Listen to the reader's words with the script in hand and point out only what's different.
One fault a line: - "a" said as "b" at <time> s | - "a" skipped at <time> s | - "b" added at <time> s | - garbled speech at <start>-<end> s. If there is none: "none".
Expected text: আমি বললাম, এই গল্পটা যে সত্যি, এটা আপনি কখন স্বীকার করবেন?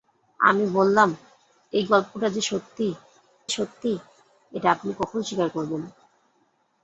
- "সত্যি" added at 3.5 s